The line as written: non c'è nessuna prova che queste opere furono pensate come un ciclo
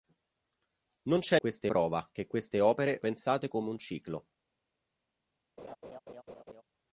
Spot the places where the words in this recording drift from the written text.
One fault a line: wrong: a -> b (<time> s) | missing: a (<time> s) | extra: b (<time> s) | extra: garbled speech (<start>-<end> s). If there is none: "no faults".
wrong: nessuna -> queste (1.4 s)
missing: furono (3.0 s)